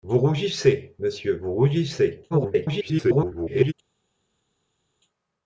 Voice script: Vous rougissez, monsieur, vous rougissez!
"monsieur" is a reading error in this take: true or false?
false